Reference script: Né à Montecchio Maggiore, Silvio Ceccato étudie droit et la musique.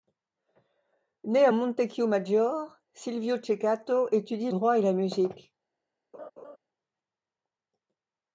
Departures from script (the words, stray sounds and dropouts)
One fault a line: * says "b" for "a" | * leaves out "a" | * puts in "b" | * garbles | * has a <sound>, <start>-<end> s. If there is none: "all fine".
* has a laugh, 6.1-6.6 s